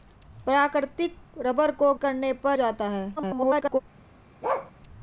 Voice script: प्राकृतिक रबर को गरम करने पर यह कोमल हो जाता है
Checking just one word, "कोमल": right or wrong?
wrong